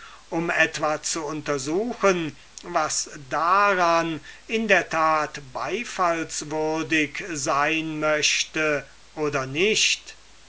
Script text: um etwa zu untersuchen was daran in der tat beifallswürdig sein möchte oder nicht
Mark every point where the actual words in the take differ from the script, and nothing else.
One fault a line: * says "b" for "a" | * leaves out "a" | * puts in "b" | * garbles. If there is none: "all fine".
all fine